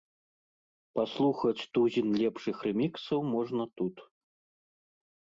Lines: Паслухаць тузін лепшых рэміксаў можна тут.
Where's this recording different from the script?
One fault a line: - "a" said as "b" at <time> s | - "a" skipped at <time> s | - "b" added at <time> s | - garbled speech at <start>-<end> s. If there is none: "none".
none